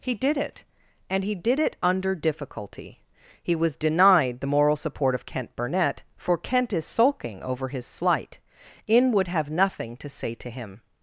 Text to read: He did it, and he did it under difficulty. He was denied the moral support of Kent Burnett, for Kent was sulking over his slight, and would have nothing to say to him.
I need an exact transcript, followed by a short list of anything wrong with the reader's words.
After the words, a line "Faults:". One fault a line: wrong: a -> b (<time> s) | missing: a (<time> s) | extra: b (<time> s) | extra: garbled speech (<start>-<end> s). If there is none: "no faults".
He did it, and he did it under difficulty. He was denied the moral support of Kent Burnett, for Kent is sulking over his slight, in would have nothing to say to him.
Faults:
wrong: was -> is (6.7 s)
wrong: and -> in (8.9 s)